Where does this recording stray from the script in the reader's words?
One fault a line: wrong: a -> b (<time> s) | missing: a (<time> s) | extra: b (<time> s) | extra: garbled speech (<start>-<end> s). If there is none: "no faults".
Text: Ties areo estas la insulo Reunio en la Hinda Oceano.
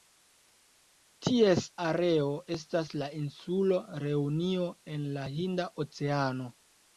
no faults